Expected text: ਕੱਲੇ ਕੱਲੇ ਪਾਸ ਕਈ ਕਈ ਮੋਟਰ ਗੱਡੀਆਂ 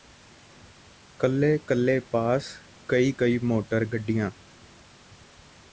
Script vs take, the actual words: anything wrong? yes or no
no